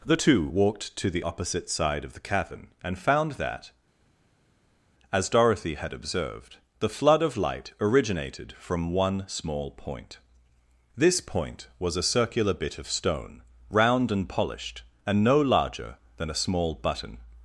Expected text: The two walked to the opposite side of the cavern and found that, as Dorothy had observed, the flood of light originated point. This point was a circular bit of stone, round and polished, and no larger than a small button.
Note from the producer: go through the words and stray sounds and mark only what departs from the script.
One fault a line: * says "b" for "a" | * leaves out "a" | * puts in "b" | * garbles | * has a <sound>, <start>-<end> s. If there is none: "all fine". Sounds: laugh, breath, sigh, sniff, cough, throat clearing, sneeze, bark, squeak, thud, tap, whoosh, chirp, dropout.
* puts in "from one small"